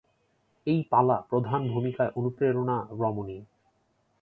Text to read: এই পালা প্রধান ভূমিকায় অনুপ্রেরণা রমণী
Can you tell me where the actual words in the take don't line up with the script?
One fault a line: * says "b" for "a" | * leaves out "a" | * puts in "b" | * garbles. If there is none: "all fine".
all fine